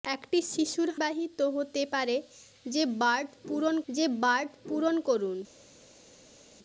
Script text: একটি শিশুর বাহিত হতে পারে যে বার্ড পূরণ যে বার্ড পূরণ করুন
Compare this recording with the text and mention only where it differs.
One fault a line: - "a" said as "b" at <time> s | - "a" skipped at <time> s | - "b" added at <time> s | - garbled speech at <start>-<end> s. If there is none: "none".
none